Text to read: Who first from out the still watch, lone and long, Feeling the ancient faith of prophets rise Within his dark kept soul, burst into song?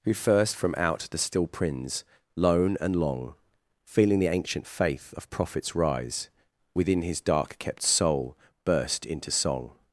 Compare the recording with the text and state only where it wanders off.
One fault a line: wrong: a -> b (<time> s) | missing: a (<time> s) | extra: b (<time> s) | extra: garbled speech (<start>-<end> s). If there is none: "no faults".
wrong: watch -> prins (1.4 s)